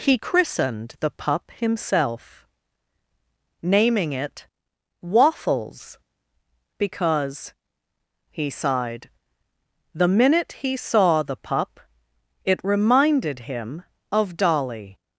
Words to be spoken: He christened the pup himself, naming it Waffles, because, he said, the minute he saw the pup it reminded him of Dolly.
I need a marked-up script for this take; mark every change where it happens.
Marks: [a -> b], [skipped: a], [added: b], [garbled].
He christened the pup himself, naming it Waffles, because, he [said, -> sighed] the minute he saw the pup it reminded him of Dolly.